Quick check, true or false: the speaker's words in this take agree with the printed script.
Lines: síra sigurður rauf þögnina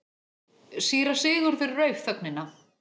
true